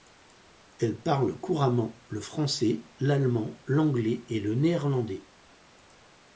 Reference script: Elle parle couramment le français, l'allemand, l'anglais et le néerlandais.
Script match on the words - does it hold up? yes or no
yes